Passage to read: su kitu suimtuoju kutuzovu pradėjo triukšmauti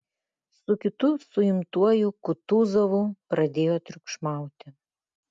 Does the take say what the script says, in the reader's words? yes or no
yes